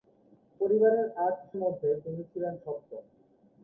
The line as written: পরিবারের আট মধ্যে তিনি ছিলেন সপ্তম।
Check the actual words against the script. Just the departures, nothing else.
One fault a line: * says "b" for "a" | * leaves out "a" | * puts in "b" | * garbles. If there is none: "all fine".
all fine